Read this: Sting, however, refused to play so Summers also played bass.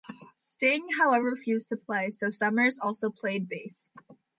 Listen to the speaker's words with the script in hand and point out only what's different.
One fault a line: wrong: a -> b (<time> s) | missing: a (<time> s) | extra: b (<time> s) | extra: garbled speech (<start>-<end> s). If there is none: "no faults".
no faults